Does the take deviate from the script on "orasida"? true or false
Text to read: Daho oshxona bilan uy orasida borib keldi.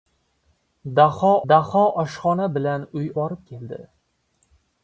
true